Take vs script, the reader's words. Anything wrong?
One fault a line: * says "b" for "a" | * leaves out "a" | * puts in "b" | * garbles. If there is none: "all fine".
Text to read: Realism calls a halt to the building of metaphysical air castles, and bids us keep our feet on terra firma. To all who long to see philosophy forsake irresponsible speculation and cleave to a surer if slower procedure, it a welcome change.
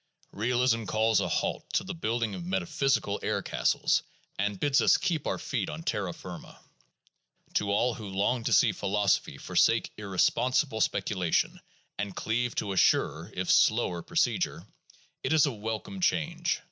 * puts in "is"